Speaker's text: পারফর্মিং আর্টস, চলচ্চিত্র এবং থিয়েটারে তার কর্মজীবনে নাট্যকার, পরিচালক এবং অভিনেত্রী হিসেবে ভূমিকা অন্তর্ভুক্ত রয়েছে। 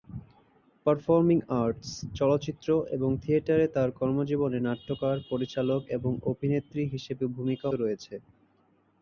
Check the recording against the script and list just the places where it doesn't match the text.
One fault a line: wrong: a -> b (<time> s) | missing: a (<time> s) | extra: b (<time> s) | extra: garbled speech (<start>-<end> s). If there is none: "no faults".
missing: অন্তর্ভুক্ত (7.7 s)